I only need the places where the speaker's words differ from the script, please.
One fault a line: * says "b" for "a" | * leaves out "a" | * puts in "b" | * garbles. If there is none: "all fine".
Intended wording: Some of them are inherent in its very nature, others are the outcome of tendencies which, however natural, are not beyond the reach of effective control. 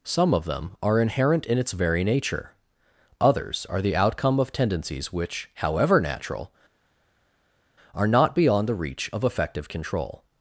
all fine